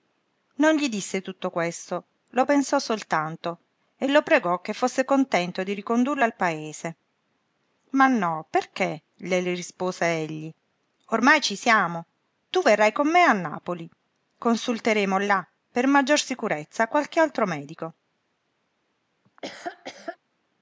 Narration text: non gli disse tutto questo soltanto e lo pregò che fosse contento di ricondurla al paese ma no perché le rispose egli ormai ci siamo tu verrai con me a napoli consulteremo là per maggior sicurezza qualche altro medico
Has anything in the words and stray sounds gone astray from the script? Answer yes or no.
yes